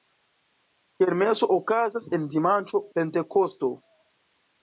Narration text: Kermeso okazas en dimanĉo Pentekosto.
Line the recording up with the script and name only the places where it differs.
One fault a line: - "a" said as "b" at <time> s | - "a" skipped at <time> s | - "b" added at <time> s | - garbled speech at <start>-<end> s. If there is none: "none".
none